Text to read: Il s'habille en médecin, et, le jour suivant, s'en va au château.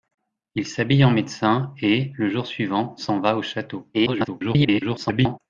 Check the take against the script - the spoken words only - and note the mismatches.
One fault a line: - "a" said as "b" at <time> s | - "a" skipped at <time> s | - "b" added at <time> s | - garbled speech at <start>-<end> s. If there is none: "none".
- garbled speech at 3.9-5.4 s